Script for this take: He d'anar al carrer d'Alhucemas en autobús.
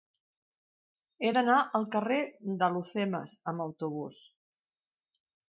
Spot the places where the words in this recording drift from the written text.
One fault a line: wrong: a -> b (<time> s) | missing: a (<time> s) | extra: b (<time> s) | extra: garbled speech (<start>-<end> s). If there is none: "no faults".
wrong: en -> amb (3.5 s)